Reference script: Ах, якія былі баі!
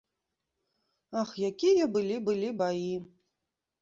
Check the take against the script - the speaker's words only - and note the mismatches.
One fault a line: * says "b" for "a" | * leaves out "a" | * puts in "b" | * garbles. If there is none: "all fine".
* puts in "былі"